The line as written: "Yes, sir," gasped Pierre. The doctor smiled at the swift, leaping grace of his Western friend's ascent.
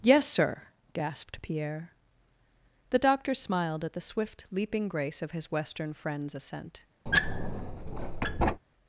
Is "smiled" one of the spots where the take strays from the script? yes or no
no